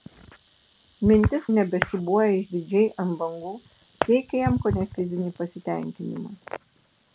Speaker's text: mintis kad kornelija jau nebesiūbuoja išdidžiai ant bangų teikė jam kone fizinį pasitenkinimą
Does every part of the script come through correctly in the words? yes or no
no